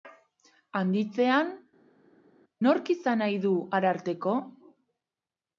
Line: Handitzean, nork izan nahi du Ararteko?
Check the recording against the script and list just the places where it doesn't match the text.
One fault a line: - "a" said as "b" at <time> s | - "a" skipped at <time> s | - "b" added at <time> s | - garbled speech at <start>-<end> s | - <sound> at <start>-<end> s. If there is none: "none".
none